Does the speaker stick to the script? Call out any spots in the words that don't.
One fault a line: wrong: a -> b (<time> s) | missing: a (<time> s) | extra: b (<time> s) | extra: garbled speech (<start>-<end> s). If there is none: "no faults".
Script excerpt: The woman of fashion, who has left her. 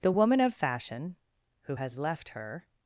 no faults